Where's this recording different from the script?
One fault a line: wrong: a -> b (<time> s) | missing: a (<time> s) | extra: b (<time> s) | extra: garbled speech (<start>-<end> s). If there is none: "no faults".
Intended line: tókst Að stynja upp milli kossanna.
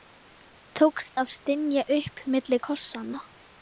no faults